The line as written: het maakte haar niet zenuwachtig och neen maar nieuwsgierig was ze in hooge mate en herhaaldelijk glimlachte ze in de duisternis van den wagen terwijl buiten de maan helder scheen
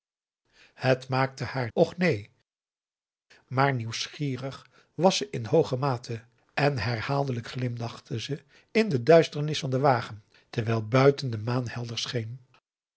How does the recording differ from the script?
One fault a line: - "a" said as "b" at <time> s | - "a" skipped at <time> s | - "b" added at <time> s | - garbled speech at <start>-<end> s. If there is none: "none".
- "niet zenuwachtig" skipped at 1.7 s